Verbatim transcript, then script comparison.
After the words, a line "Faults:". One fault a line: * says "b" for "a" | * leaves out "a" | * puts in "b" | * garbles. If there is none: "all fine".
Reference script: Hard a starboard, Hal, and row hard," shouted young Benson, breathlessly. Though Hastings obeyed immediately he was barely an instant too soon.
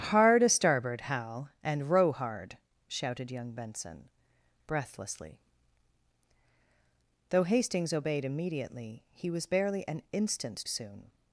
Hard a starboard, Hal, and row hard," shouted young Benson, breathlessly. Though Hastings obeyed immediately he was barely an instant soon.
Faults:
* leaves out "too"